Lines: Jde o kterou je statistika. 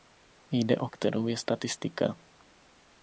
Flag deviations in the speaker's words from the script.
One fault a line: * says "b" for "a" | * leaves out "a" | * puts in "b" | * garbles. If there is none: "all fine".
all fine